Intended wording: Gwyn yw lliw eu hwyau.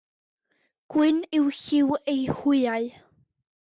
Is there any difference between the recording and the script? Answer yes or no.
no